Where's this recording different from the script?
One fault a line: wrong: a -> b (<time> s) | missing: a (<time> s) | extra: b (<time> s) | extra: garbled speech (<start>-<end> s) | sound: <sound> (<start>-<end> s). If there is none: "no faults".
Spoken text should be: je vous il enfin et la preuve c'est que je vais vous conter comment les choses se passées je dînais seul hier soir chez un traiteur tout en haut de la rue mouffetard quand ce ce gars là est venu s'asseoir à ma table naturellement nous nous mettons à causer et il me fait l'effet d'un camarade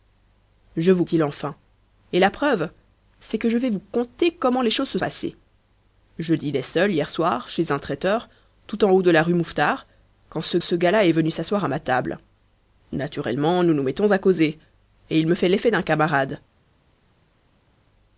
no faults